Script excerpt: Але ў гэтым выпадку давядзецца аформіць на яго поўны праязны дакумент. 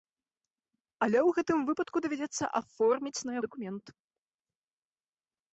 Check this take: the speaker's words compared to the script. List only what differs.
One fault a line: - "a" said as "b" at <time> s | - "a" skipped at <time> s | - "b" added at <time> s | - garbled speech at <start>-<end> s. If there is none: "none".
- "яго поўны праязны" skipped at 3.4 s